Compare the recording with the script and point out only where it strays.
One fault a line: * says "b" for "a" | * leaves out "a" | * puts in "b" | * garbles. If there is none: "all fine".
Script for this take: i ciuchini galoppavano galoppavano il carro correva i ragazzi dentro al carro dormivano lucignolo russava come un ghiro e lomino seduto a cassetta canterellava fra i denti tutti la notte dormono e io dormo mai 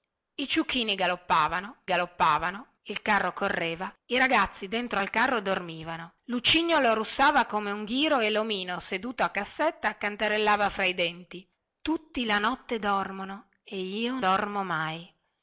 all fine